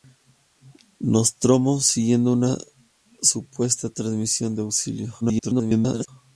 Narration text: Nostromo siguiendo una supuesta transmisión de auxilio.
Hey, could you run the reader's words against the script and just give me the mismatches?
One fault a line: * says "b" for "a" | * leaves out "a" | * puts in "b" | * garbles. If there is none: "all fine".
* garbles